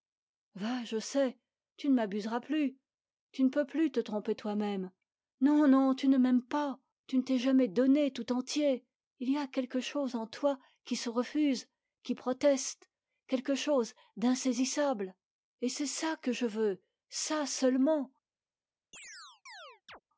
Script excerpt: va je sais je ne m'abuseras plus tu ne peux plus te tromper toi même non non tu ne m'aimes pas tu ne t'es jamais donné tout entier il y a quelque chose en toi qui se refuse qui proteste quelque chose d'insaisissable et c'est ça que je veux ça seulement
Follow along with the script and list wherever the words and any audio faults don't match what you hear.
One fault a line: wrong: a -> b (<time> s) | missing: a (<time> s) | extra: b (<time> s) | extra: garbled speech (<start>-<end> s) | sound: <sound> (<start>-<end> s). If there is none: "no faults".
wrong: je -> tu (1.8 s)
sound: chirp (18.9-20.0 s)